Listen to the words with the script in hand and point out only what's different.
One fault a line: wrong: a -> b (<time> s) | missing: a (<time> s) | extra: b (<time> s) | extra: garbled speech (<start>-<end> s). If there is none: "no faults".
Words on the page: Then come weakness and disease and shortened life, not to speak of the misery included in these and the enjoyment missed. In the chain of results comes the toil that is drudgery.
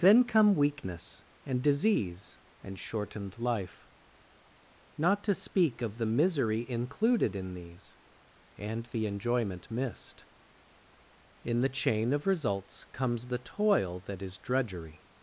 no faults